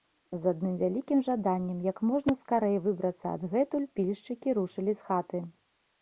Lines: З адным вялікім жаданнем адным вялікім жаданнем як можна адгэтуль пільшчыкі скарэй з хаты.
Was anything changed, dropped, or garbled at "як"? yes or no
yes